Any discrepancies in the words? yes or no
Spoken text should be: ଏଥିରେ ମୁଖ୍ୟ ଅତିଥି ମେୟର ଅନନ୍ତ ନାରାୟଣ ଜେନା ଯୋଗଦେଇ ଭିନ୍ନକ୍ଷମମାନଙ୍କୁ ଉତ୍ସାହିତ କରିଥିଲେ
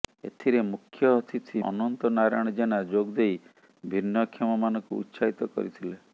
yes